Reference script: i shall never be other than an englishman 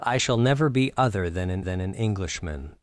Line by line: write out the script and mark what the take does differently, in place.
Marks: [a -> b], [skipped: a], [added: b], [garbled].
i shall never be other than an [added: than an] englishman